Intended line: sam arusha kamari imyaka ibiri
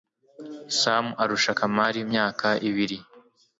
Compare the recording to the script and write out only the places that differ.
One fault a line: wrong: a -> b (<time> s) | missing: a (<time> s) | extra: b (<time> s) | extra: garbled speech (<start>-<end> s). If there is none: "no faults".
no faults